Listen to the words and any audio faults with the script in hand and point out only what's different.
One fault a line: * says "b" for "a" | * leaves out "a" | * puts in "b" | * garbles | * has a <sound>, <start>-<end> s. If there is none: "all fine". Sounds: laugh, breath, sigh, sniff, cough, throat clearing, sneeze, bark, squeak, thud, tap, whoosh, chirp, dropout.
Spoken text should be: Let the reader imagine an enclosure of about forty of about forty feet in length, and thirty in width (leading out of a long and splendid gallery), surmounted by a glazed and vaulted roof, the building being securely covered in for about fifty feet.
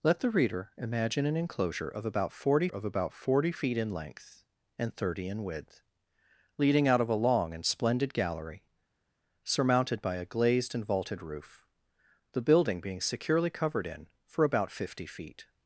all fine